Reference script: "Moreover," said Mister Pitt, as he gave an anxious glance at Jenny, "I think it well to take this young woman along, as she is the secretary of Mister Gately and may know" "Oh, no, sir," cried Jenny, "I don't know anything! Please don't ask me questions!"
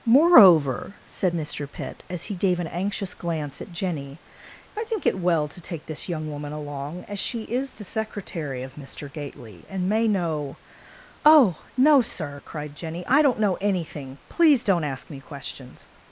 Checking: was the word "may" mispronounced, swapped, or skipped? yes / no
no